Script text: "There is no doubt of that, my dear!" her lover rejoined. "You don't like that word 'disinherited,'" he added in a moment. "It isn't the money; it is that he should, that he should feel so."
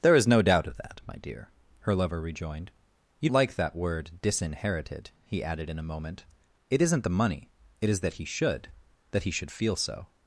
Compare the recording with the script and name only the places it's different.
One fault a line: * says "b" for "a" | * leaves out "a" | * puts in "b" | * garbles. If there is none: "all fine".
* leaves out "don't"